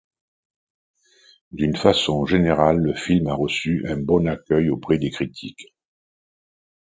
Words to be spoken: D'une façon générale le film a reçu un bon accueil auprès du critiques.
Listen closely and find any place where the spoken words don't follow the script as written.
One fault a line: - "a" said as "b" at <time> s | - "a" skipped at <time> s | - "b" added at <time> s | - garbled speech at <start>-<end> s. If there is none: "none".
- "du" said as "des" at 5.0 s